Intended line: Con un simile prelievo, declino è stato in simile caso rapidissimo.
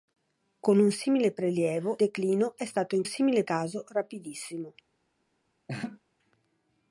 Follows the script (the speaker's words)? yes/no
yes